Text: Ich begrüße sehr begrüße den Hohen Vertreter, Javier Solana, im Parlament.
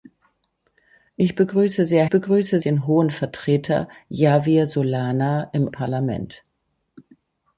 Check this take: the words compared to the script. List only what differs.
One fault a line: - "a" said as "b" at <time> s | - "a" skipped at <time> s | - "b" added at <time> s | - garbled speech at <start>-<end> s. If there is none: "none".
none